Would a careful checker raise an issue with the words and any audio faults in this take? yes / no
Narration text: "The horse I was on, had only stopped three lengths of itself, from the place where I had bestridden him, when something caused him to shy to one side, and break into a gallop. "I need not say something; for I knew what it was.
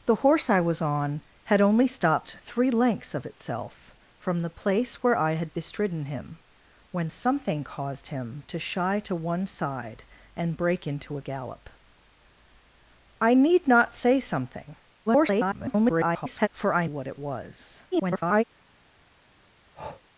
yes